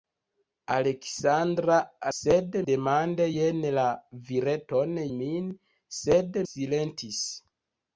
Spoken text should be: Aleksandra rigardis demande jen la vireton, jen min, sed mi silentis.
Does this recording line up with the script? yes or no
no